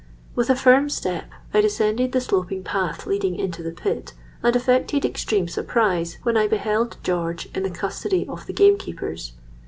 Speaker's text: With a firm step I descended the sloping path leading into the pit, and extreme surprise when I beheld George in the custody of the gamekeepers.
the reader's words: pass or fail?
fail